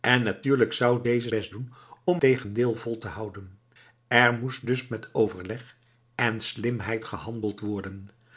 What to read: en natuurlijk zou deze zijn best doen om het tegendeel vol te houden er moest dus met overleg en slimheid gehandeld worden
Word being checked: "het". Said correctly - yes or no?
no